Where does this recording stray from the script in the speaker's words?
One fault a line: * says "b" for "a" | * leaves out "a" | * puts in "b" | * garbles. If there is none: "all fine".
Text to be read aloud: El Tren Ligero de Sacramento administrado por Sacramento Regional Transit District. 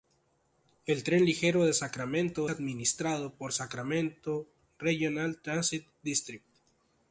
all fine